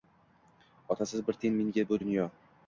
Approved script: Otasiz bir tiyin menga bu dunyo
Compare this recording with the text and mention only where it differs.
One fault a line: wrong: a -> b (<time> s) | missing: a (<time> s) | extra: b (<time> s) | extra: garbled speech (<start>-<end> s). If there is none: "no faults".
no faults